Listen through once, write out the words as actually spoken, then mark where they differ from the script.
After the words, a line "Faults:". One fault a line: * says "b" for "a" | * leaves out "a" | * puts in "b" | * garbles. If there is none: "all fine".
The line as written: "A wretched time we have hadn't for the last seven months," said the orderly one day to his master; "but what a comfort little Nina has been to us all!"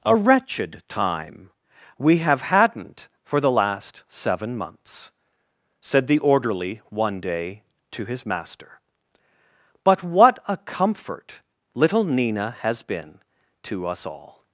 "A wretched time we have hadn't for the last seven months," said the orderly one day to his master; "but what a comfort little Nina has been to us all!"
Faults:
all fine